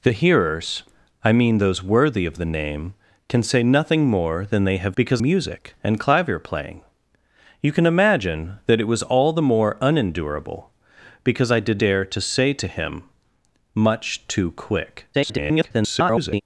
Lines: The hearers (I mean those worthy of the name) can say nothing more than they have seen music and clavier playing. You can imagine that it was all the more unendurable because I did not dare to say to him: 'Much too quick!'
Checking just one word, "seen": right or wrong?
wrong